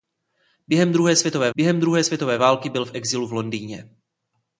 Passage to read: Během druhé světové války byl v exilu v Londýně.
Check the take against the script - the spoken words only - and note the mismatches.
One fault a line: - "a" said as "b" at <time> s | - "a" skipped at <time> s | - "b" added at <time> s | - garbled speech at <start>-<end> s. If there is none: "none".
- "během druhé světové" added at 1.5 s